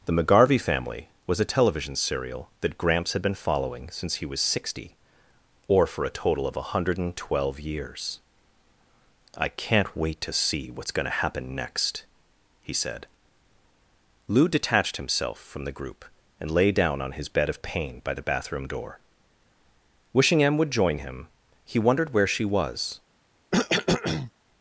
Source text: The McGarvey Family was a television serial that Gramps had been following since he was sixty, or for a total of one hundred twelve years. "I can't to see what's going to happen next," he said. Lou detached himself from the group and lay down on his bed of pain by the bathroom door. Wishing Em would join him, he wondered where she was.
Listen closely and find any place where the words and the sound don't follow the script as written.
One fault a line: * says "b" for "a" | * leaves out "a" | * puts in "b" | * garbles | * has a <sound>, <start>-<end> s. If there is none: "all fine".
* puts in "wait"
* has a cough, 23.5-24.3 s